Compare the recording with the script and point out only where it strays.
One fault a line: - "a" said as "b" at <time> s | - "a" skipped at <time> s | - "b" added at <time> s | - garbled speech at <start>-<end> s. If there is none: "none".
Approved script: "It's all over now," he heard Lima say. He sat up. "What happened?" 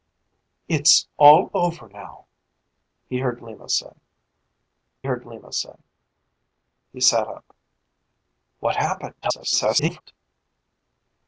- "heard Lima say" added at 5.0 s
- garbled speech at 9.2-10.0 s